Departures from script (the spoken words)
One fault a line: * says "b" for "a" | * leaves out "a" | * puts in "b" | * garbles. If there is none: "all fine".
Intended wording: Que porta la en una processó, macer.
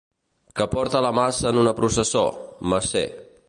* puts in "maça"